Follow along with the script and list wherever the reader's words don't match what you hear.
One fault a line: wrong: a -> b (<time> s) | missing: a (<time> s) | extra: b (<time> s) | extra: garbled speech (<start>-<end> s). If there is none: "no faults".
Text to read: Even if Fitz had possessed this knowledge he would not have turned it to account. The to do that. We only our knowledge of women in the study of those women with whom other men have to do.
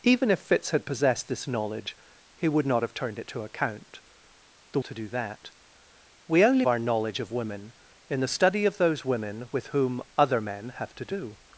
no faults